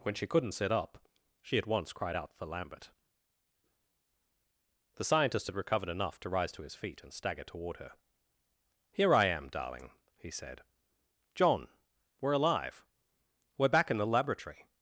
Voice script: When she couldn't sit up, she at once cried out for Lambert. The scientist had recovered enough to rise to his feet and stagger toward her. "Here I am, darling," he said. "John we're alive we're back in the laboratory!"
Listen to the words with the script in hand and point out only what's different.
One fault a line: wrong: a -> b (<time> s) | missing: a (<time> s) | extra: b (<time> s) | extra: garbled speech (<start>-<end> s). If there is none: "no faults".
no faults